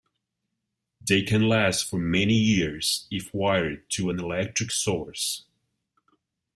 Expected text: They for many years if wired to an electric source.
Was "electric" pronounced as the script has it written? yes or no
yes